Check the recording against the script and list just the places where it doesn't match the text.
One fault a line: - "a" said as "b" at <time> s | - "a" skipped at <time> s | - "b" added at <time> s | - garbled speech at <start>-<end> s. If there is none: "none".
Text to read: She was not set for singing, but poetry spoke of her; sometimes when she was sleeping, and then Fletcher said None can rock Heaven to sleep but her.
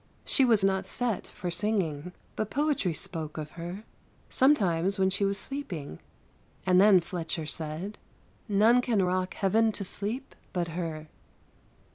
none